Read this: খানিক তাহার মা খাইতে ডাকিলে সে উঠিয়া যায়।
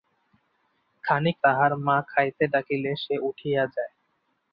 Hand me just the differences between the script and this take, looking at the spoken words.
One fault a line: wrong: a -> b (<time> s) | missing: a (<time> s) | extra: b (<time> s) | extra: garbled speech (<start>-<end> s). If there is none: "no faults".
no faults